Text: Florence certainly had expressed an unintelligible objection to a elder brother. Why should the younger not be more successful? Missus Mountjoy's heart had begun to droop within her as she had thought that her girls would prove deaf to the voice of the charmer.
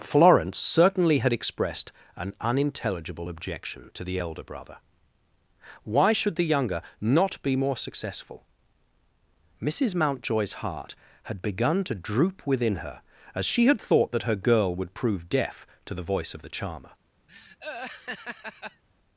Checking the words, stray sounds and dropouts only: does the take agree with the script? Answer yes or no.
no